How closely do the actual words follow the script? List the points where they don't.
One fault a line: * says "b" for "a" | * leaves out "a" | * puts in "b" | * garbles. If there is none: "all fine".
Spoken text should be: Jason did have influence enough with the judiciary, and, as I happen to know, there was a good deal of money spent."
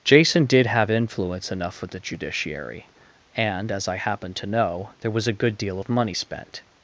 all fine